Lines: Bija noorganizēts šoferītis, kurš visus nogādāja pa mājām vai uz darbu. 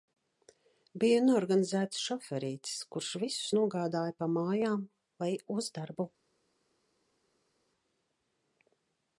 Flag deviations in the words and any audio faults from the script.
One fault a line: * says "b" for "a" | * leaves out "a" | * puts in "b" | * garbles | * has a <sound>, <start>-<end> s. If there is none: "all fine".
all fine